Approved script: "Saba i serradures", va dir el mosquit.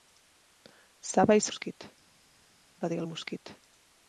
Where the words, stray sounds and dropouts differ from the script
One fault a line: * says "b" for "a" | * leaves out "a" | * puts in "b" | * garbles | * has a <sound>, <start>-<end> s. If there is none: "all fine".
* says "mosquit" for "serradures"